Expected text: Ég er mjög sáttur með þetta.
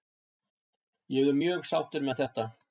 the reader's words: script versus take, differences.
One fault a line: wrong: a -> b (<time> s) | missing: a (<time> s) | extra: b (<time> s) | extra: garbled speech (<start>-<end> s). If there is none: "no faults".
no faults